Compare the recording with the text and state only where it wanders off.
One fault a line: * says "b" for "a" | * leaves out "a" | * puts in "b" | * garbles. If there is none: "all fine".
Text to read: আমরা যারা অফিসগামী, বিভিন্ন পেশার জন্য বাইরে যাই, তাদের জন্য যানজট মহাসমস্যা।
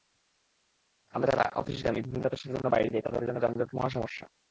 all fine